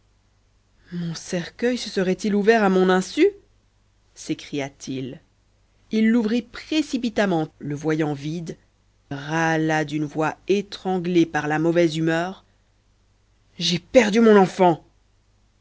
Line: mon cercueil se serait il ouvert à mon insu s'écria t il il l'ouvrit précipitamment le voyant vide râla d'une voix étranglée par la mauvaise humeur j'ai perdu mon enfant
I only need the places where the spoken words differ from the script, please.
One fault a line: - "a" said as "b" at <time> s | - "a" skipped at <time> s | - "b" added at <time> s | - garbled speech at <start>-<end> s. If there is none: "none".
none